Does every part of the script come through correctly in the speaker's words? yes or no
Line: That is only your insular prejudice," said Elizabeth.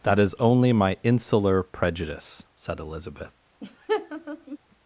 no